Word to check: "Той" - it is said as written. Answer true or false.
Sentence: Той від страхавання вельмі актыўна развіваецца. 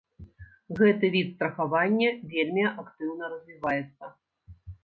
false